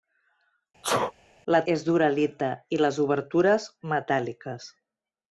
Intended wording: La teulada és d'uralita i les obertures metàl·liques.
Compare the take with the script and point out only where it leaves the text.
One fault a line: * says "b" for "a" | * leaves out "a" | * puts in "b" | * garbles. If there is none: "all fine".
* leaves out "teulada"